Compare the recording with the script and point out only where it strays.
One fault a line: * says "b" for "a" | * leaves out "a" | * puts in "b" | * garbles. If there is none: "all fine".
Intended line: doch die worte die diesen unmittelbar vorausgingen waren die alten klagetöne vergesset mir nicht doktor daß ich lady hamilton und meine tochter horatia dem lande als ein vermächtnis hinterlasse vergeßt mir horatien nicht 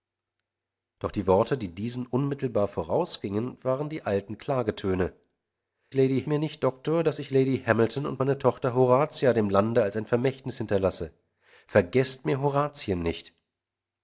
* says "lady" for "vergesset"